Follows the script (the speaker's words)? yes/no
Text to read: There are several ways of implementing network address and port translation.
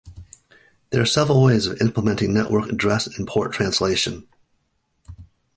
yes